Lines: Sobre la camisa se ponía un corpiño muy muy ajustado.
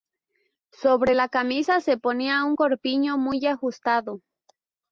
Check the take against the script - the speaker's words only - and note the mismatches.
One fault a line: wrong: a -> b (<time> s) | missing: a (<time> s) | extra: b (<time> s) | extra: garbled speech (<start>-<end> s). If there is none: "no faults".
missing: muy (3.4 s)